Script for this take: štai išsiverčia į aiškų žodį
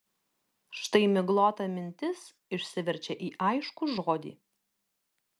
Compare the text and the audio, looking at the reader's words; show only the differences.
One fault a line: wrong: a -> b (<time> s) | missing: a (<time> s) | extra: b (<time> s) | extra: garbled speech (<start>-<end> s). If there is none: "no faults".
extra: miglota mintis (1.2 s)